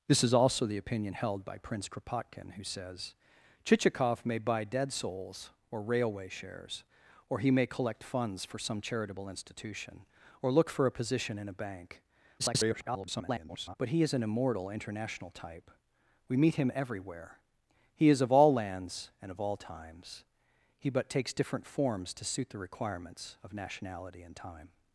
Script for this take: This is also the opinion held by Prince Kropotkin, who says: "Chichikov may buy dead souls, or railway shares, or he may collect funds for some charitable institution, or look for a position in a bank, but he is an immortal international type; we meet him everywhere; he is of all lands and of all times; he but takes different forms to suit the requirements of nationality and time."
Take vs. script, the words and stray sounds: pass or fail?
fail